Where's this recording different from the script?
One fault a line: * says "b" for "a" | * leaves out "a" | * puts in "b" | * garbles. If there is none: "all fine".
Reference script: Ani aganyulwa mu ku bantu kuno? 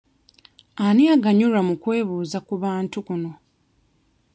* puts in "kwebuuza"